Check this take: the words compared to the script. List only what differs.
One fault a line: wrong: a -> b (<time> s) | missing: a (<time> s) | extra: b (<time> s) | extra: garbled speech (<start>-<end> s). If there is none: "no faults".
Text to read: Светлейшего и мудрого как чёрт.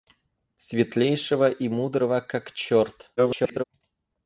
extra: garbled speech (3.2-3.6 s)